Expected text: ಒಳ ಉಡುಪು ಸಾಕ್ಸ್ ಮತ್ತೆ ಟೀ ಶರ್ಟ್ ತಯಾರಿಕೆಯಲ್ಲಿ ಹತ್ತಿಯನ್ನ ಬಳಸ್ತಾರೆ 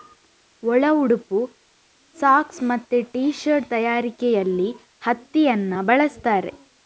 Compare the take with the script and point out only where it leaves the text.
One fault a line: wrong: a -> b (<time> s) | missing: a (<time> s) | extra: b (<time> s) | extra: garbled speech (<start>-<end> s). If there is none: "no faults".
no faults